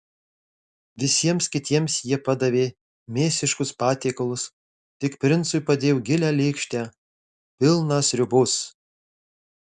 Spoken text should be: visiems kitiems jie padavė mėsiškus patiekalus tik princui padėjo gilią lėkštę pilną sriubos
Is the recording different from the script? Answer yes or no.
no